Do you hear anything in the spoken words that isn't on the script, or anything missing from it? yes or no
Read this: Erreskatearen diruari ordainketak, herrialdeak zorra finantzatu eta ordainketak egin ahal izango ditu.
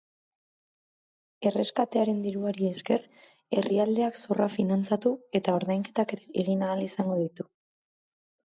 yes